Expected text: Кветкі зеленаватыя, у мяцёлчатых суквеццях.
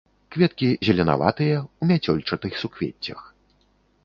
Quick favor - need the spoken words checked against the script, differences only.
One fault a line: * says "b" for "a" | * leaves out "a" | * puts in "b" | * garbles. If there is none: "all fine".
all fine